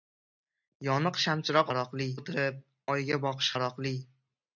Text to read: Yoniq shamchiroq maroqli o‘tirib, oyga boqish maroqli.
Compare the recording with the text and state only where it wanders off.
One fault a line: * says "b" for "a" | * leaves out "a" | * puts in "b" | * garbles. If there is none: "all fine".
all fine